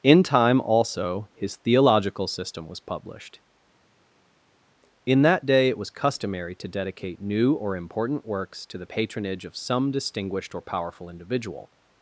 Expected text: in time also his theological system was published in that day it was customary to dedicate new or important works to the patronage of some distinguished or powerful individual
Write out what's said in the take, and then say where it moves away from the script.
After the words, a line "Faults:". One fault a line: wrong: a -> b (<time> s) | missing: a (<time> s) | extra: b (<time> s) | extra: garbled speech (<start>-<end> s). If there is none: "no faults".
in time also his theological system was published in that day it was customary to dedicate new or important works to the patronage of some distinguished or powerful individual
Faults:
no faults